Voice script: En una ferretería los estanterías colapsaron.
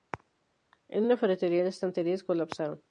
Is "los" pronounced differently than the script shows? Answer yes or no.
yes